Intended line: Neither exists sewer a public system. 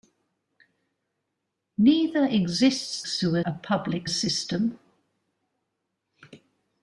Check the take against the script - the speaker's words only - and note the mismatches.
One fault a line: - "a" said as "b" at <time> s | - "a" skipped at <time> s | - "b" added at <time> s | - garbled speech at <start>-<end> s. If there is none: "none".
none